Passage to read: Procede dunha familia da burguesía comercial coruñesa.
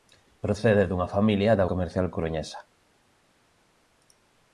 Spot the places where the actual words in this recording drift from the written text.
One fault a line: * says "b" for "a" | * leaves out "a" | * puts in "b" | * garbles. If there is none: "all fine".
* leaves out "burguesía"